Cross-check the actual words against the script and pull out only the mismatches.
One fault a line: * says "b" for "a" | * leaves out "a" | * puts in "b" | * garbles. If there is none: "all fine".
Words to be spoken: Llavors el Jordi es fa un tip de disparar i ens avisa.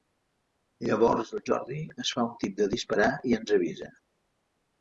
all fine